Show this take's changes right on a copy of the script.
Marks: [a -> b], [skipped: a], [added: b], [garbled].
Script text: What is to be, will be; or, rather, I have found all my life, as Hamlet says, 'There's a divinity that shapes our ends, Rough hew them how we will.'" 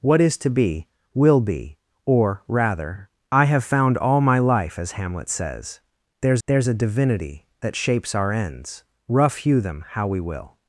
What is to be, will be; or, rather, I have found all my life, as Hamlet says, 'There's [added: there's] a divinity that shapes our ends, Rough hew them how we will.'"